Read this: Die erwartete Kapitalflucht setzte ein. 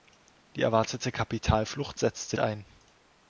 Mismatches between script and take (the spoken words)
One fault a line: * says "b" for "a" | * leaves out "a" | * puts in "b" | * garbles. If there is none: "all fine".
all fine